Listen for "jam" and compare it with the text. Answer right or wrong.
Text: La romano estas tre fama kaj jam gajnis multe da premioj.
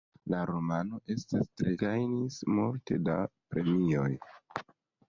wrong